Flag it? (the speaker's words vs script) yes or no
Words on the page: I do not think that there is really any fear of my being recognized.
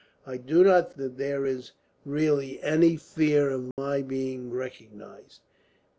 yes